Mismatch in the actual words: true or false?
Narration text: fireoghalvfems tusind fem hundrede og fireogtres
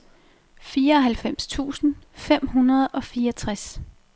false